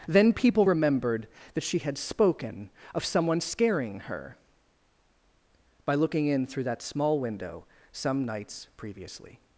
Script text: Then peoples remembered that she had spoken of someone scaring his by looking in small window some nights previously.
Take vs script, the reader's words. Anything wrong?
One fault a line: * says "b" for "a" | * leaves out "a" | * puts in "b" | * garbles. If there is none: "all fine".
* says "people" for "peoples"
* says "her" for "his"
* puts in "through that"